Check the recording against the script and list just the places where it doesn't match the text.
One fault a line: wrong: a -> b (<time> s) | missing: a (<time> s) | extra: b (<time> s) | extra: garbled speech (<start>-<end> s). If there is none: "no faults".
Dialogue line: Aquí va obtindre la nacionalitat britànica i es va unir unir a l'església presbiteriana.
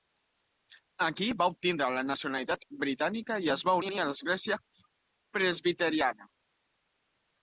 no faults